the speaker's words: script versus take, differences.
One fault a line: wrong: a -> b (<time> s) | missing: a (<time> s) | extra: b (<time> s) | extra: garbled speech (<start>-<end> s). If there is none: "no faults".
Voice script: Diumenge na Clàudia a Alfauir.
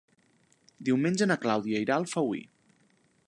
extra: irà (1.9 s)